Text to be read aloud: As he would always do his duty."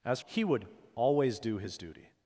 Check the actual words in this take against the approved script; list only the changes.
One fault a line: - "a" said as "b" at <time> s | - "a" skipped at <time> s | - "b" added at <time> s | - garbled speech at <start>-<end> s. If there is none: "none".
none